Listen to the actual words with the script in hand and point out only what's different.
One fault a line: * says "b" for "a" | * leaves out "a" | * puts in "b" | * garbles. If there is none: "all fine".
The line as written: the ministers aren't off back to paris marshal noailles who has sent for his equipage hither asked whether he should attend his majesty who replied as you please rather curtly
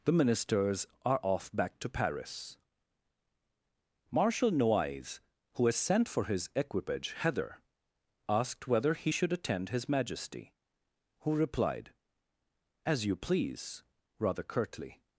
* says "are" for "aren't"